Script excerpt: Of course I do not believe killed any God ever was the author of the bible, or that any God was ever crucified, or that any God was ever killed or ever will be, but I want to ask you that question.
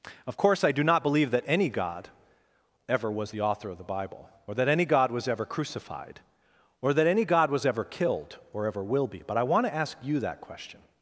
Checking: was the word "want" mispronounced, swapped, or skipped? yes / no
no